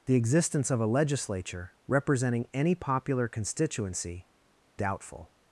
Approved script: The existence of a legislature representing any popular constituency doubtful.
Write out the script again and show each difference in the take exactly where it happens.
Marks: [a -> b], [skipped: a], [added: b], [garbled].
The existence of a legislature representing any popular constituency doubtful.